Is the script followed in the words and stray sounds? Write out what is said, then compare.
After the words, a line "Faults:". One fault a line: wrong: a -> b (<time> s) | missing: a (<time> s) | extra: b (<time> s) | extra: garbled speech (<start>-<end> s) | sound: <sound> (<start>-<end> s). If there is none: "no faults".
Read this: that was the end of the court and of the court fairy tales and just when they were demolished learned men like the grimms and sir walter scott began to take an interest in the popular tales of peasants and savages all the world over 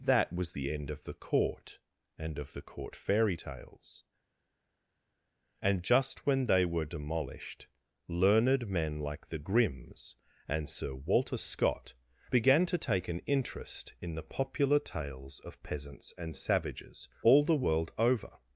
that was the end of the court and of the court fairy tales and just when they were demolished learned men like the grimms and sir walter scott began to take an interest in the popular tales of peasants and savages all the world over
Faults:
no faults